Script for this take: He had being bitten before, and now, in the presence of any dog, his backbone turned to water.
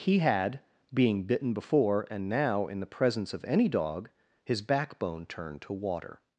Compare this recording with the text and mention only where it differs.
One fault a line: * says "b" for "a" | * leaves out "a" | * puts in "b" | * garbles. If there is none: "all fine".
all fine